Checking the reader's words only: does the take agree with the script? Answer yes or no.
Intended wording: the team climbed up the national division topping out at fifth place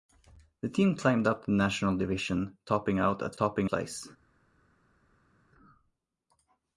no